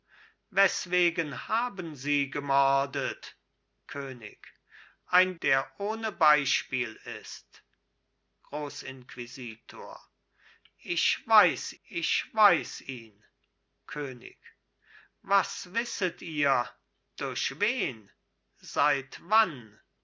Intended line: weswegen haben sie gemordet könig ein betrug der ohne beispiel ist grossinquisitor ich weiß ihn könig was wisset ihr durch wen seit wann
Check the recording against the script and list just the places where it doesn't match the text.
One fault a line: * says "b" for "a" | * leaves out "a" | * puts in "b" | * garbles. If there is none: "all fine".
* leaves out "betrug"
* puts in "ich weiß"